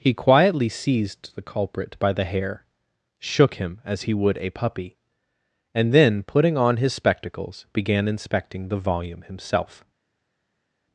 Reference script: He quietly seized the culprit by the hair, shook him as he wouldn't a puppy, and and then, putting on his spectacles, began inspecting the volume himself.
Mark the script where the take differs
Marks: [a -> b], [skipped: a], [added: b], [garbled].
He quietly seized the culprit by the hair, shook him as he [wouldn't -> would] a puppy, and [skipped: and] then, putting on his spectacles, began inspecting the volume himself.